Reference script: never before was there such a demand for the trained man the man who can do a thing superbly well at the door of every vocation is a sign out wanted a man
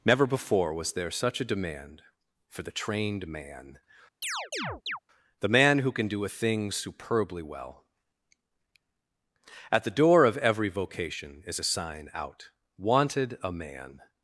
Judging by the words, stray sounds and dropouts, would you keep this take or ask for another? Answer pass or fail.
fail